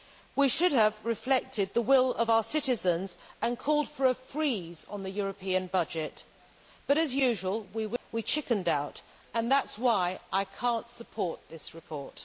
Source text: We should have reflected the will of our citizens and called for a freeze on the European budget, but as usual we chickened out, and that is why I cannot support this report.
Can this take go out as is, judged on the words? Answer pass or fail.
pass